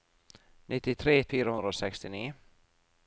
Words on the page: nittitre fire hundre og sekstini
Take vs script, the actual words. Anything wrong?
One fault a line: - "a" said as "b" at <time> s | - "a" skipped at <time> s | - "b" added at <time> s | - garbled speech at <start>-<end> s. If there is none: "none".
none